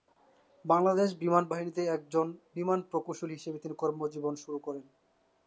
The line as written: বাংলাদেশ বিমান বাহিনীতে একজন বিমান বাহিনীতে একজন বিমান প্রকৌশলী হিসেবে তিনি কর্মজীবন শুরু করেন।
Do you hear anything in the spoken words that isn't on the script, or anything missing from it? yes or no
yes